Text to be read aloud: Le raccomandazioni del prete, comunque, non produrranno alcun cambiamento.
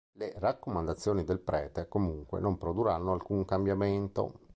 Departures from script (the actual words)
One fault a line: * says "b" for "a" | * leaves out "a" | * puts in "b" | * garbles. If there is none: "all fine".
all fine